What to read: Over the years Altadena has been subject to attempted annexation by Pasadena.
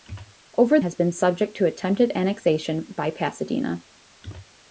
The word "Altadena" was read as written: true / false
false